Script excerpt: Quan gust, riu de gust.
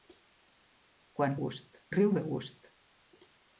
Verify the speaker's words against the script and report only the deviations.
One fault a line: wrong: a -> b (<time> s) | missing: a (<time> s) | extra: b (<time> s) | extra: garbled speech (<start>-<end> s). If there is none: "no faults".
no faults